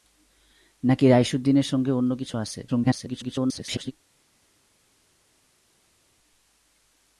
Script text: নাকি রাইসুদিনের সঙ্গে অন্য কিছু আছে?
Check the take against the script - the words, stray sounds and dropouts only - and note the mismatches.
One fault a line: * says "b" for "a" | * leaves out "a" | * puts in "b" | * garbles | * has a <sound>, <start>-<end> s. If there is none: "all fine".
* garbles